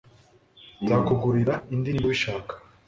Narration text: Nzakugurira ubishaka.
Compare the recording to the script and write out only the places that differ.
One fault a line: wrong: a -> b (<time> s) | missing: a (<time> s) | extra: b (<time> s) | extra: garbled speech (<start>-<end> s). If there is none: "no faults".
extra: indi niba (1.7 s)